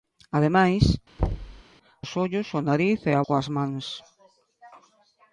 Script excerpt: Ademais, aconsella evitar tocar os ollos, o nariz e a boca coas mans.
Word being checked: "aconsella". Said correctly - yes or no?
no